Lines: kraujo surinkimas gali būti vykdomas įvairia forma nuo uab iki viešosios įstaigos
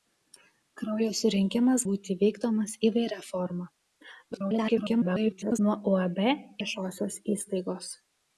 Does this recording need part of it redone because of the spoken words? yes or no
yes